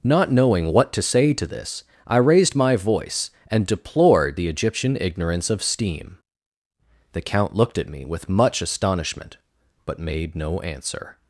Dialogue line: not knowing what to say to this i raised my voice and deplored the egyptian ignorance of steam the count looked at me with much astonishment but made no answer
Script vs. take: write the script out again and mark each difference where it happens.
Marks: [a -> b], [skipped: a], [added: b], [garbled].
not knowing what to say to this i raised my voice and deplored the egyptian ignorance of steam the count looked at me with much astonishment but made no answer